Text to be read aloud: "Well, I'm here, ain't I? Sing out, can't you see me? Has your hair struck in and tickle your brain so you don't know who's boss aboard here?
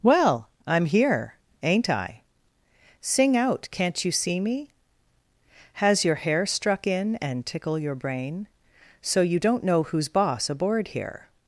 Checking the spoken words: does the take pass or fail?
pass